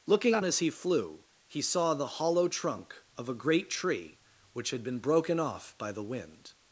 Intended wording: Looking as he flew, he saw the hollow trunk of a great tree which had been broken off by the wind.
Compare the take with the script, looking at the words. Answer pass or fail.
pass